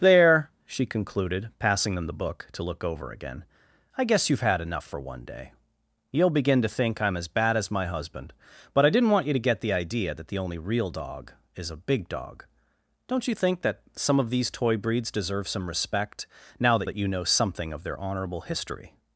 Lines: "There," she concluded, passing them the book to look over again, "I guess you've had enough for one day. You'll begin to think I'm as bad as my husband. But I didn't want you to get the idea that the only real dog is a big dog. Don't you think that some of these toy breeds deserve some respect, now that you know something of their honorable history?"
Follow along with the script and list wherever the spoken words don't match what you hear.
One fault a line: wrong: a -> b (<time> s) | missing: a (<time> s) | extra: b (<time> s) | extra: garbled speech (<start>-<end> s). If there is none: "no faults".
extra: that (16.9 s)